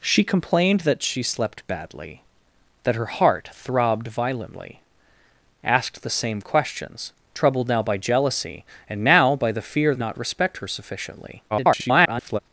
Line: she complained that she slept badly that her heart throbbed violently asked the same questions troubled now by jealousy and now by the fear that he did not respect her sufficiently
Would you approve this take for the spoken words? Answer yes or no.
no